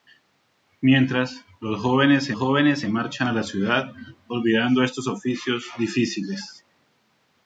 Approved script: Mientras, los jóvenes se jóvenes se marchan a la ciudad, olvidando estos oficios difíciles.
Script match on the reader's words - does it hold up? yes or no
yes